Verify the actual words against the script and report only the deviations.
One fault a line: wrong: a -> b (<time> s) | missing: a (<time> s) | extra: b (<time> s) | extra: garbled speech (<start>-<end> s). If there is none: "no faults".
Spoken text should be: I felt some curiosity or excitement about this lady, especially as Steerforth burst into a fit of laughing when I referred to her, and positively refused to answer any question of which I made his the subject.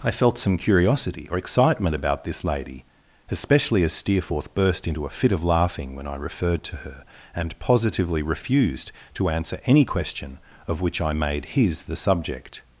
no faults